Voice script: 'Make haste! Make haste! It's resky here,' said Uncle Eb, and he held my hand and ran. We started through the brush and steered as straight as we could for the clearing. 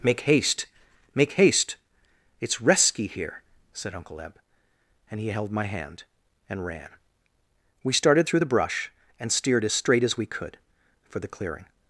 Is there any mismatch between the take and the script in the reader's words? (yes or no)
no